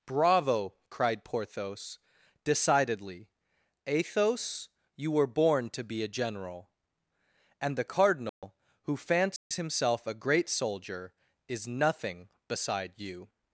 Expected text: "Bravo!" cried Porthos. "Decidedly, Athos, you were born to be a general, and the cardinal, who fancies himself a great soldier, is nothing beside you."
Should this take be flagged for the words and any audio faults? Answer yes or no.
yes